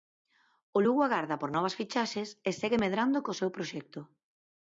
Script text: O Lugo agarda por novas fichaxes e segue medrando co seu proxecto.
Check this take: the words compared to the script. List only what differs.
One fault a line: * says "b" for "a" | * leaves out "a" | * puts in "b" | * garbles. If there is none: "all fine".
all fine